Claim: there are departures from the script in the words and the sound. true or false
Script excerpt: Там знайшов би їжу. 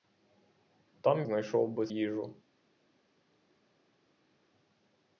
false